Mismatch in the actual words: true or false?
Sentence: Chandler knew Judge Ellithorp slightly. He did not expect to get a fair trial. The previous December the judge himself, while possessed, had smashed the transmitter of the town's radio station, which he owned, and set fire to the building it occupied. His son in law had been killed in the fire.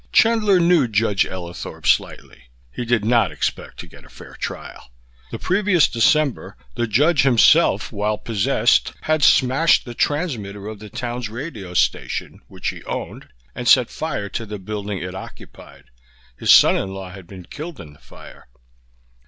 false